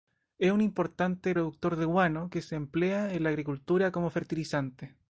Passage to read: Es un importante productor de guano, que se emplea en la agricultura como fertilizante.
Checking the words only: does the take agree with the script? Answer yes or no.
yes